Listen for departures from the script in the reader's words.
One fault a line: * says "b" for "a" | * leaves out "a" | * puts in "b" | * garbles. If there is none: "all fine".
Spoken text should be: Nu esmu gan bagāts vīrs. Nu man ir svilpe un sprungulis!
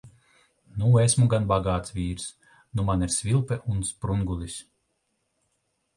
all fine